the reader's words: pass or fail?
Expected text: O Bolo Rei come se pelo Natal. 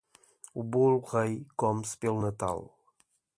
pass